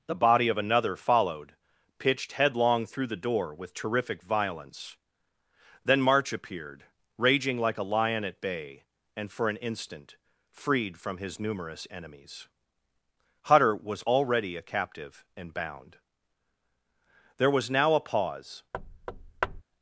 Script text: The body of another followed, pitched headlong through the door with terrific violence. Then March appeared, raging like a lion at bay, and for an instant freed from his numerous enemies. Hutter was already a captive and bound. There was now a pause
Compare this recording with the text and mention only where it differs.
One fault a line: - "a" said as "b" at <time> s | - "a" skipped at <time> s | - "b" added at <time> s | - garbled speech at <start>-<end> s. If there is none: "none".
none